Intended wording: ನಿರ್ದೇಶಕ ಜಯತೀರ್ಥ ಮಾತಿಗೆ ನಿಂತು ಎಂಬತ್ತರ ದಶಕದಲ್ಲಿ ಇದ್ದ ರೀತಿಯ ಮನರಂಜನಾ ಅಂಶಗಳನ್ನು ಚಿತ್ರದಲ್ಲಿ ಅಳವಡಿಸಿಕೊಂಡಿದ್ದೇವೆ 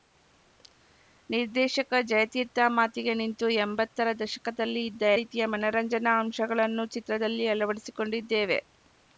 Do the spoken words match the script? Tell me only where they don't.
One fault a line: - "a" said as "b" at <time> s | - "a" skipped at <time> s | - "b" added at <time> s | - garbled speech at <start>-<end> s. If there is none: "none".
none